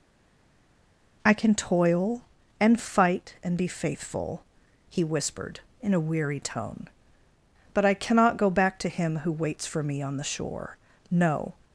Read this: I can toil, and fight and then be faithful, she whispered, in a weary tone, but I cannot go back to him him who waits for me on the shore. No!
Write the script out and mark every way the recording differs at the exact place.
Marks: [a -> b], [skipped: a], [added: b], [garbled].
I can toil, and fight and [skipped: then] be faithful, [she -> he] whispered, in a weary tone, but I cannot go back to him [skipped: him] who waits for me on the shore. No!